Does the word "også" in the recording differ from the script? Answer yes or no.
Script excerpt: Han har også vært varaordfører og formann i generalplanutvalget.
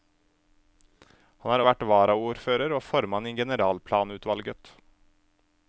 yes